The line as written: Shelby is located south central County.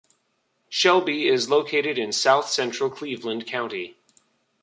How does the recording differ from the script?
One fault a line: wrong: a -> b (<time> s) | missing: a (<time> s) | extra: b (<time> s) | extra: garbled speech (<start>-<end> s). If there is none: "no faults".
extra: in (2.0 s)
extra: Cleveland (2.9 s)